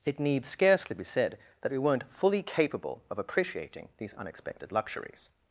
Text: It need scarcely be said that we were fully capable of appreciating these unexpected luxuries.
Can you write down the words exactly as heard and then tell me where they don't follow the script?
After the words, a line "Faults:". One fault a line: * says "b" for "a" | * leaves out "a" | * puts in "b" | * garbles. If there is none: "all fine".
It need scarcely be said that we weren't fully capable of appreciating these unexpected luxuries.
Faults:
* says "weren't" for "were"